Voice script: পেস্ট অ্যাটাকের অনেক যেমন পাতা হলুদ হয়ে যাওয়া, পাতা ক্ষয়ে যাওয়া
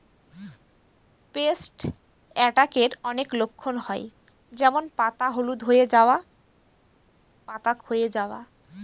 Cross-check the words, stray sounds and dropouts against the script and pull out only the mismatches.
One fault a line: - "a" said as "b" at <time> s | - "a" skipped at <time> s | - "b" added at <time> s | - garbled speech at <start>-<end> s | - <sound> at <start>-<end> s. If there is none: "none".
- "লক্ষণ হয়" added at 3.3 s